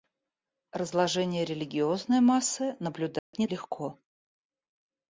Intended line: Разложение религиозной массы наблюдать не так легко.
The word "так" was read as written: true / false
false